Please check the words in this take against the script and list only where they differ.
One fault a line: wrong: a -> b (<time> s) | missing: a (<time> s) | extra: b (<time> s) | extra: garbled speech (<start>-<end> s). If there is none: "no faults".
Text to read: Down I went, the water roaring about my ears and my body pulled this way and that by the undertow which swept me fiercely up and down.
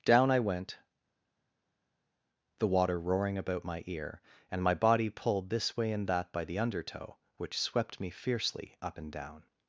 wrong: ears -> ear (3.9 s)